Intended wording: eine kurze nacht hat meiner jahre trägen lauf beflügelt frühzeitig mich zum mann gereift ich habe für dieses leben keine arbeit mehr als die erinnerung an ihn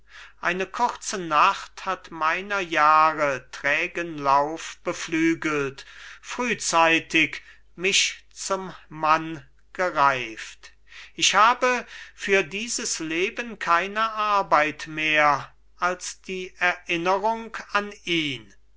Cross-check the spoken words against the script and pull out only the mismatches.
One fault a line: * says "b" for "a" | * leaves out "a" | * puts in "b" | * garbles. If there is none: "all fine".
all fine